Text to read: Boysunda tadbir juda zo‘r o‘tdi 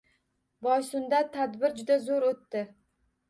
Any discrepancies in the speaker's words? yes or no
no